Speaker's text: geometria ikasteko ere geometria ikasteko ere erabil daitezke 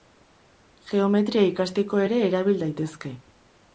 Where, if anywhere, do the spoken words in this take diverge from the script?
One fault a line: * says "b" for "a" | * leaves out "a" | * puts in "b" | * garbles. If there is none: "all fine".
* leaves out "geometria ikasteko ere"